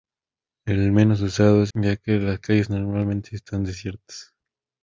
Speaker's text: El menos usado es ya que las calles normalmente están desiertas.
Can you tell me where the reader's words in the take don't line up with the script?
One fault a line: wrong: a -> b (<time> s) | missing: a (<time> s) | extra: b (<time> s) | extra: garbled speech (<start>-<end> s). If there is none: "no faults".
no faults